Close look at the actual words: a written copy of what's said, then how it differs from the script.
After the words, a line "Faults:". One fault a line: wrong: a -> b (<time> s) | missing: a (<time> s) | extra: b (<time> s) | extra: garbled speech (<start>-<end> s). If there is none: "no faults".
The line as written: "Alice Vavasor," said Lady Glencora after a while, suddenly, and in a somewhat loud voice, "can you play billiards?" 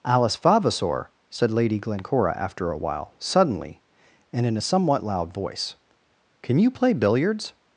"Alice Vavasor," said Lady Glencora after a while, suddenly, and in a somewhat loud voice, "can you play billiards?"
Faults:
no faults